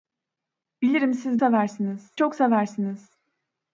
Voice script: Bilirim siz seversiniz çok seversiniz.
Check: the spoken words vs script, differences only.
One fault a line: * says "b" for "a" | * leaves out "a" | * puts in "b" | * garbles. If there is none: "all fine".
all fine